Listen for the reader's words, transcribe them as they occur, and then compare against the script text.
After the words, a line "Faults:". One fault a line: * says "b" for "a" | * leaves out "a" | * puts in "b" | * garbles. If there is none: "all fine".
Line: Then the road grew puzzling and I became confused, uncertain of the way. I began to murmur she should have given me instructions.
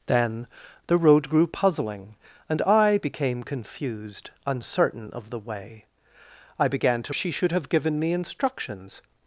Then the road grew puzzling and I became confused, uncertain of the way. I began to she should have given me instructions.
Faults:
* leaves out "murmur"